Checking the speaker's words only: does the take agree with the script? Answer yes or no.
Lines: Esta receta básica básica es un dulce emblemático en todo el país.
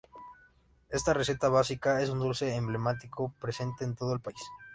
no